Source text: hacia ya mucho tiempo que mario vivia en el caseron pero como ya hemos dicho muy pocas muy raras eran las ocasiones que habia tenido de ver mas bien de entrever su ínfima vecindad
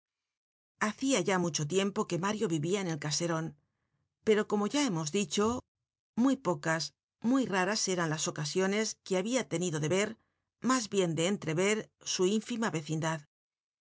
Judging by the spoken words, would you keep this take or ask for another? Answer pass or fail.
pass